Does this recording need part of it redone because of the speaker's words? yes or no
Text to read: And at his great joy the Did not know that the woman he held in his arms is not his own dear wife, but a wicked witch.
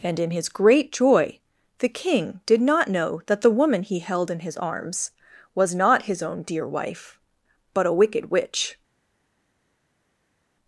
yes